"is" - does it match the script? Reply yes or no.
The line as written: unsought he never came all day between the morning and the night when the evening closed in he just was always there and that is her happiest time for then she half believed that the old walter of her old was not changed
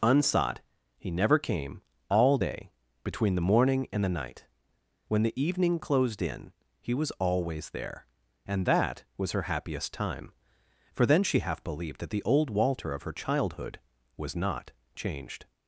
no